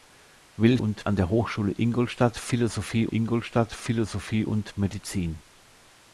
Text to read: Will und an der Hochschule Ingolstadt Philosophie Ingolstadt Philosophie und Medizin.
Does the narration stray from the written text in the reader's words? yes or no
no